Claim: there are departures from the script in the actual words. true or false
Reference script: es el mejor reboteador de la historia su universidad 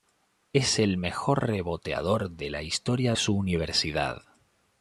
false